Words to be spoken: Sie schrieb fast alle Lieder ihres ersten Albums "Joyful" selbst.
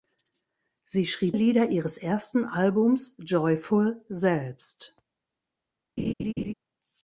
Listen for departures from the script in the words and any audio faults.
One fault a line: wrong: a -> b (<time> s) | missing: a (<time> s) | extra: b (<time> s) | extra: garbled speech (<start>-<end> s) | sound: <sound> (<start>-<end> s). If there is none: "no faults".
missing: fast alle (1.4 s)
sound: laugh (6.0-6.5 s)